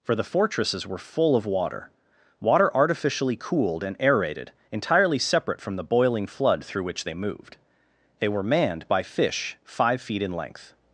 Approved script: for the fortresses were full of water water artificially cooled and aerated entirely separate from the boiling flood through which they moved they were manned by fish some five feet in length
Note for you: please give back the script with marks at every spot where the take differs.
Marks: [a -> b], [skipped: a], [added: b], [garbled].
for the fortresses were full of water water artificially cooled and aerated entirely separate from the boiling flood through which they moved they were manned by fish [skipped: some] five feet in length